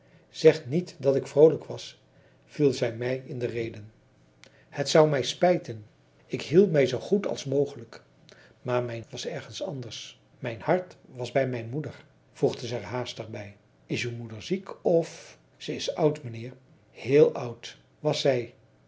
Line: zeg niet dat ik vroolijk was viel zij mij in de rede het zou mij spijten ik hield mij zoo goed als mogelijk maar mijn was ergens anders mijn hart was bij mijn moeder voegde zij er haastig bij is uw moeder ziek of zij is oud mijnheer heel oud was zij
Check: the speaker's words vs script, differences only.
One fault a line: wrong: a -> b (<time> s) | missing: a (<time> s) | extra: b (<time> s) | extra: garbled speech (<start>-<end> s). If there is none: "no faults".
no faults